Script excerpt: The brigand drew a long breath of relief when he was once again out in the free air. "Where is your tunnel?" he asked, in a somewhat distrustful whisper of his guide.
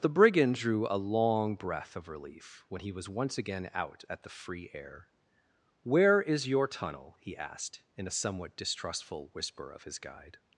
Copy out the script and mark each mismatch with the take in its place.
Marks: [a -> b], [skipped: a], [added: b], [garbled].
The brigand drew a long breath of relief when he was once again out [in -> at] the free air. "Where is your tunnel?" he asked, in a somewhat distrustful whisper of his guide.